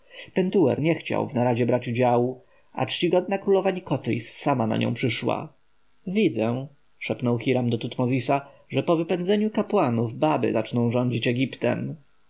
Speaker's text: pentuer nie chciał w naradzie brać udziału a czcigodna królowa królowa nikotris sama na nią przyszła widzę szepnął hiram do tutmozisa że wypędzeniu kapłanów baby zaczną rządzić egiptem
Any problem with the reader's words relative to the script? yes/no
yes